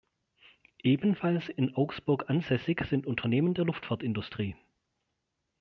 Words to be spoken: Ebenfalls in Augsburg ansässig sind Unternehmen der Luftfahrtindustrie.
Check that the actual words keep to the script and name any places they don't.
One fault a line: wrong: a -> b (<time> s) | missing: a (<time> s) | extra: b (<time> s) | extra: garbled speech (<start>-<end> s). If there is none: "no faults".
no faults